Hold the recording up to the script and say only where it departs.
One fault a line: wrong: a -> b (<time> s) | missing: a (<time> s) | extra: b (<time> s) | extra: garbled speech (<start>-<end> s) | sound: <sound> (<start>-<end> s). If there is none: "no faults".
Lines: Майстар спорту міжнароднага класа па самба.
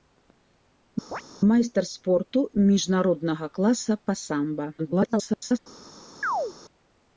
sound: chirp (1.1-1.2 s)
extra: garbled speech (4.8-5.6 s)
sound: chirp (6.2-6.5 s)